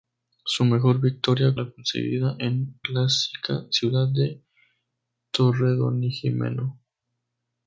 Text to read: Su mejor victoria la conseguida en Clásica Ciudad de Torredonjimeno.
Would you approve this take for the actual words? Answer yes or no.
yes